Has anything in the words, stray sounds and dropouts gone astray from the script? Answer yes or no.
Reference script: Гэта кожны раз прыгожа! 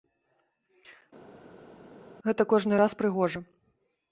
no